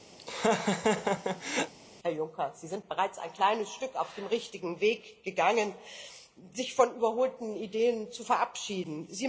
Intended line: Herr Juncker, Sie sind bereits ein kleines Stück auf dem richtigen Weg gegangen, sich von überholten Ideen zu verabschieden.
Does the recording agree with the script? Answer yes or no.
yes